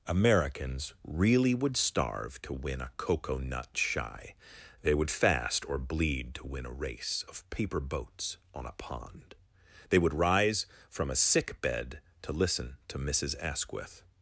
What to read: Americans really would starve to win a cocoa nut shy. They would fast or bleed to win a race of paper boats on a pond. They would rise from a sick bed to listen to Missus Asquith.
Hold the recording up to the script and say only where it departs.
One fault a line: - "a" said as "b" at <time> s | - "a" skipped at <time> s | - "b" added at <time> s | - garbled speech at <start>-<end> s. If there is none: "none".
none